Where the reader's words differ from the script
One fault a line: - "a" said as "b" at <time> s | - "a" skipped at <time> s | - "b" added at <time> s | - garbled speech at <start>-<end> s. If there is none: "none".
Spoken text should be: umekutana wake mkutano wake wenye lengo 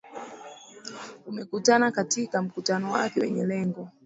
- "wake" said as "katika" at 1.9 s